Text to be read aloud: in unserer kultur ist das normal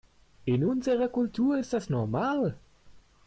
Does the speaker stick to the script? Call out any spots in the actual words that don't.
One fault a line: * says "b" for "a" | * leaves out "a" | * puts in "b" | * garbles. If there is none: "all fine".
all fine